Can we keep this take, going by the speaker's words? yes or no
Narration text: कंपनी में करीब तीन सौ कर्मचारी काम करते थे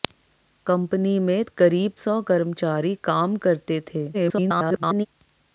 no